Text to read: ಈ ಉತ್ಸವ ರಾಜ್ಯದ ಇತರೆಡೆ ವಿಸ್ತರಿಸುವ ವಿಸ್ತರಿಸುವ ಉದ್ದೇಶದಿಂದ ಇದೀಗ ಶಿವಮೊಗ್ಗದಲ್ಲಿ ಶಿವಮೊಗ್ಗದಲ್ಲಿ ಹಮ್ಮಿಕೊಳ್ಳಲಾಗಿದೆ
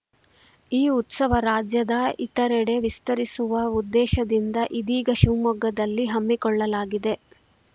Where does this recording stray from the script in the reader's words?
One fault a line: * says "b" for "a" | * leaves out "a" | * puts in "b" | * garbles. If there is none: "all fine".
* leaves out "ವಿಸ್ತರಿಸುವ"
* leaves out "ಶಿವಮೊಗ್ಗದಲ್ಲಿ"